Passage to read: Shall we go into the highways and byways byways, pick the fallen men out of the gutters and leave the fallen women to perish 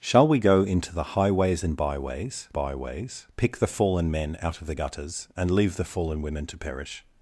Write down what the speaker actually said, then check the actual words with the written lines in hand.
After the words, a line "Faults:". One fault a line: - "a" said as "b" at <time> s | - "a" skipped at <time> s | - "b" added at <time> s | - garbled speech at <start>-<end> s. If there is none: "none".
Shall we go into the highways and byways byways, pick the fallen men out of the gutters and leave the fallen women to perish
Faults:
none